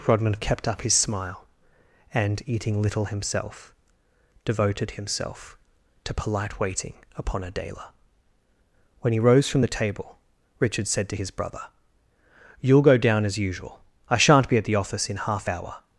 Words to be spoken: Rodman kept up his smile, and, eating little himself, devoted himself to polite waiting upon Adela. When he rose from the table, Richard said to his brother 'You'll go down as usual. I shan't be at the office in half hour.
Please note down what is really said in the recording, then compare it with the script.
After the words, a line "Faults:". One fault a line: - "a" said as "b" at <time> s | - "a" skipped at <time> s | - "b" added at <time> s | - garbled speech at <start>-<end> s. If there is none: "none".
Rodman kept up his smile, and, eating little himself, devoted himself to polite waiting upon Adela. When he rose from the table, Richard said to his brother 'You'll go down as usual. I shan't be at the office in half hour.
Faults:
none